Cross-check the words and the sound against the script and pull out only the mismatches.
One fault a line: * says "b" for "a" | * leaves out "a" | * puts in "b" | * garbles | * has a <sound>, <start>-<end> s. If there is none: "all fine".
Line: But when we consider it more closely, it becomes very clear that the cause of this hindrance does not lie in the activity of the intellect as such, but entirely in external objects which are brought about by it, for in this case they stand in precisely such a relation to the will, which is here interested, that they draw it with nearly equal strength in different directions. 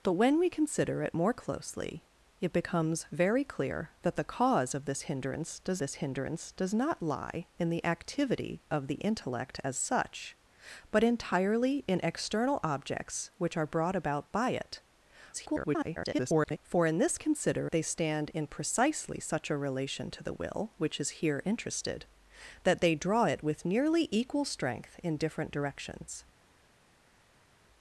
* puts in "this hindrance does"
* garbles
* says "consider" for "case"